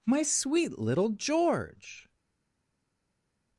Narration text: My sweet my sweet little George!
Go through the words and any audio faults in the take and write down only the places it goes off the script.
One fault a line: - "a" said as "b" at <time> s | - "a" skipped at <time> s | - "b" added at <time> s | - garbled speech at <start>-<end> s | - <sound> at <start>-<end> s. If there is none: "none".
- "my sweet" skipped at 0.8 s